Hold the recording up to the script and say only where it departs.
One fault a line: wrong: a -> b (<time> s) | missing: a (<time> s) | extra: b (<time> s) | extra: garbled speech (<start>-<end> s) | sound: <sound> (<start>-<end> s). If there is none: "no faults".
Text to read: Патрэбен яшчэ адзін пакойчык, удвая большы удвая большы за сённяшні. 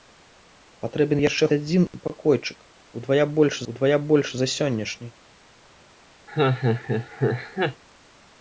sound: laugh (6.3-7.8 s)